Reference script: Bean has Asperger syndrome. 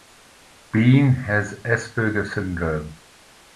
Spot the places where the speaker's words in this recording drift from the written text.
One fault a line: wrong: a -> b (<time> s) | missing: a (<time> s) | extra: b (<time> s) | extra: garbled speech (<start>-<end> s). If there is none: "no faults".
no faults